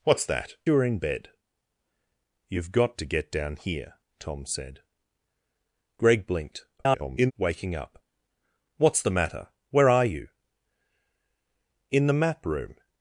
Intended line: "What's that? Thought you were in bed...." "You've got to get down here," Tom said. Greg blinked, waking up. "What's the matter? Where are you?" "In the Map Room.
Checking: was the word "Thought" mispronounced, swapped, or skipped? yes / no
yes